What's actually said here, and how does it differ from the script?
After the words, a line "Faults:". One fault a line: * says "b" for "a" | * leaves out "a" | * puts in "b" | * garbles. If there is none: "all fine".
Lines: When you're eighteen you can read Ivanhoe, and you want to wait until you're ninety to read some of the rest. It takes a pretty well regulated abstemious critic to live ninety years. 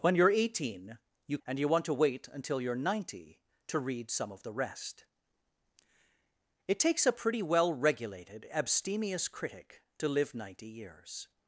When you're eighteen you and you want to wait until you're ninety to read some of the rest. It takes a pretty well regulated abstemious critic to live ninety years.
Faults:
* leaves out "can read Ivanhoe"